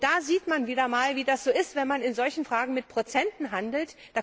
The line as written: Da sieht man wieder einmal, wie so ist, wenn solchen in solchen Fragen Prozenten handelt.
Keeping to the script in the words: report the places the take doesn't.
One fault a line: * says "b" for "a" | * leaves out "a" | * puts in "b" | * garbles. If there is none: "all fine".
* puts in "das"
* says "man" for "solchen"
* puts in "mit"